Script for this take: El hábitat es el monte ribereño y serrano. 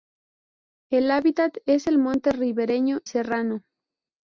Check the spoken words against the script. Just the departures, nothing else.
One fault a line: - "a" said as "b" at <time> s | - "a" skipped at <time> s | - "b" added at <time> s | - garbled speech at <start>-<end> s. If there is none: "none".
- "y" skipped at 3.0 s